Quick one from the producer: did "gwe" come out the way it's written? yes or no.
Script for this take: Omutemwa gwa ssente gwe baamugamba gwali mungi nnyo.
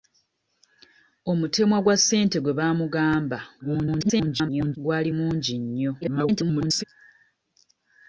yes